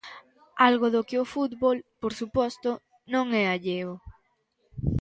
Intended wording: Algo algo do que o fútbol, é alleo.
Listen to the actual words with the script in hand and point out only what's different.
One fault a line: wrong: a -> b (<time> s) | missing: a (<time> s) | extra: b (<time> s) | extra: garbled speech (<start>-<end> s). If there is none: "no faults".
missing: algo (0.9 s)
extra: por suposto non (2.0 s)